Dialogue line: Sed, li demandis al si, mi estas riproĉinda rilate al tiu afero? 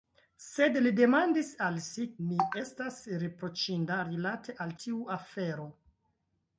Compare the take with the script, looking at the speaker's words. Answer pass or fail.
pass